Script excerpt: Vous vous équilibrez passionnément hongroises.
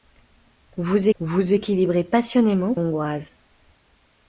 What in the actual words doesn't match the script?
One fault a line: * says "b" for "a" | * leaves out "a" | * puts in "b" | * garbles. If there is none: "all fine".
all fine